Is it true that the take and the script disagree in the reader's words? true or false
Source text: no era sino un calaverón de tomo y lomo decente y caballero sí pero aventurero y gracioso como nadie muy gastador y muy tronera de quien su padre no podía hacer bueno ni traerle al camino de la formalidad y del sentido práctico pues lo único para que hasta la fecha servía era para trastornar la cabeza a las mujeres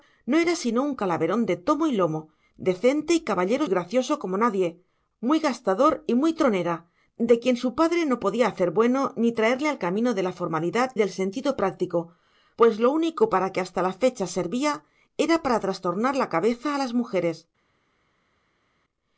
true